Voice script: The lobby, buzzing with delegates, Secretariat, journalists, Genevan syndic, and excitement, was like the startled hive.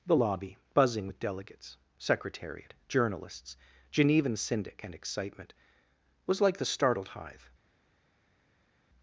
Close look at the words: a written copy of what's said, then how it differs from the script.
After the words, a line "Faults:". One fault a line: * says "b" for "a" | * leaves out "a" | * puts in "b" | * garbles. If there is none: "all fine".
The lobby, buzzing with delegates, Secretariat, journalists, Genevan syndic, and excitement, was like the startled hive.
Faults:
all fine